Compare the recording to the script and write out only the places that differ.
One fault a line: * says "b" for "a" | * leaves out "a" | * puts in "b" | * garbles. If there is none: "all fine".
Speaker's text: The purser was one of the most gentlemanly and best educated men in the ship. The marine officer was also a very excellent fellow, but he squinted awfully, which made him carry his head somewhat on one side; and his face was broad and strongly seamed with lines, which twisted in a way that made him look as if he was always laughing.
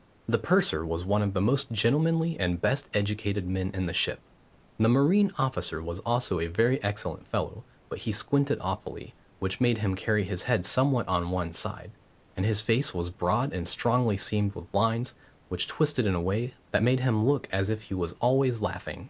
all fine